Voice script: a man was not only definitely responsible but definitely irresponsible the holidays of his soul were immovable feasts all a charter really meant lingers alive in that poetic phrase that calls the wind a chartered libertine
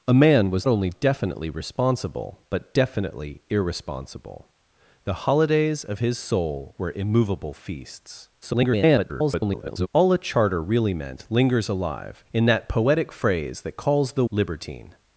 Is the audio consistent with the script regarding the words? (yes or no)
no